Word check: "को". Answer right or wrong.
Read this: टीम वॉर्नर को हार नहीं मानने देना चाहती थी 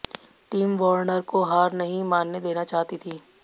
right